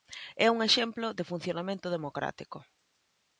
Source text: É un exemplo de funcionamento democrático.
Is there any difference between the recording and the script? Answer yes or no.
no